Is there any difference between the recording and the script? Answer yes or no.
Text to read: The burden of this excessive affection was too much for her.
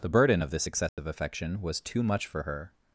no